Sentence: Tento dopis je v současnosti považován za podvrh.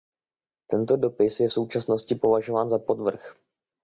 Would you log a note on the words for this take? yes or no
no